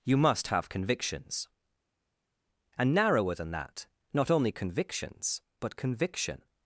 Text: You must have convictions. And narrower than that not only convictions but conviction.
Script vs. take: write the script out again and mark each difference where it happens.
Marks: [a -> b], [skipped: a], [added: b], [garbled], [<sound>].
You must have convictions. And narrower than that not only convictions but conviction.